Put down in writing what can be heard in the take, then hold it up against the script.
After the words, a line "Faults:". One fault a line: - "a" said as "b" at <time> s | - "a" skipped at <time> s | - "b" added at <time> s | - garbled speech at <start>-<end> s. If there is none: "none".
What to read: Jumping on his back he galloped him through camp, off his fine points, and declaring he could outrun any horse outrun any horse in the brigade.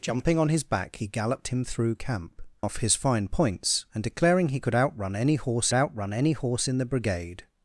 Jumping on his back he galloped him through camp, off his fine points, and declaring he could outrun any horse outrun any horse in the brigade.
Faults:
none